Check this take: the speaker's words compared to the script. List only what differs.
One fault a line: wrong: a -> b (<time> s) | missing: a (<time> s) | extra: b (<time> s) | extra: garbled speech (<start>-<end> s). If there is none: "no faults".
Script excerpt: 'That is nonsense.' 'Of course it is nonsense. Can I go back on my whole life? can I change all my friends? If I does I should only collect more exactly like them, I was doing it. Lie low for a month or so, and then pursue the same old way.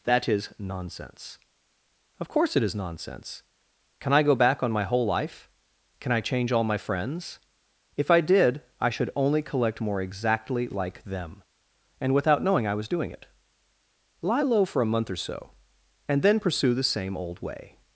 wrong: does -> did (8.2 s)
extra: and without knowing (12.0 s)